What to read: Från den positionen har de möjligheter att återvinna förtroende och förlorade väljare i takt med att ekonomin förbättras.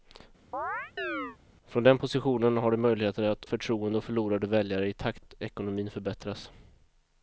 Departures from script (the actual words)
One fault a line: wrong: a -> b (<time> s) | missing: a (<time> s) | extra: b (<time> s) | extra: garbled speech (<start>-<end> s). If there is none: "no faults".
missing: återvinna (3.4 s)
missing: med (5.2 s)